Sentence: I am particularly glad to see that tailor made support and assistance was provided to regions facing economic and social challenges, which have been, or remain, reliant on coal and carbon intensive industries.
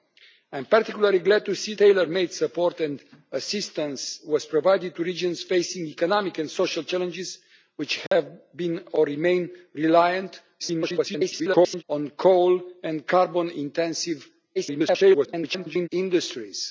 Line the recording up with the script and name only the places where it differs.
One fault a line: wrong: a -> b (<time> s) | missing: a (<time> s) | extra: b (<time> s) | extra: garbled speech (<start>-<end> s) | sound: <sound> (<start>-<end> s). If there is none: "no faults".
missing: that (1.7 s)
sound: dropout (8.1-8.1 s)
extra: garbled speech (10.6-11.8 s)
extra: garbled speech (14.6-15.9 s)